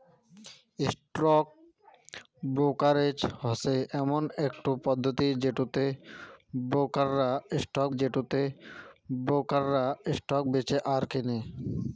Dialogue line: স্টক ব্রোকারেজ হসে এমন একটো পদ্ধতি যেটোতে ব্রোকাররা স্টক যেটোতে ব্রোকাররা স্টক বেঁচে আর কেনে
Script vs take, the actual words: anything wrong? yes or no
no